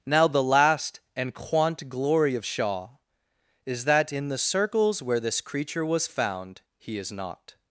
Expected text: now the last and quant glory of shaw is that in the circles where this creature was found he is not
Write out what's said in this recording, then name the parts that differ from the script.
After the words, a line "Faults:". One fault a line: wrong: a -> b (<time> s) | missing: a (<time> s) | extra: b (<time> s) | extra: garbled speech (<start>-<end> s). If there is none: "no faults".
now the last and quant glory of shaw is that in the circles where this creature was found he is not
Faults:
no faults